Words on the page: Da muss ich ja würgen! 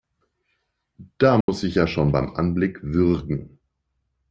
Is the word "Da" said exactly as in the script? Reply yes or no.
yes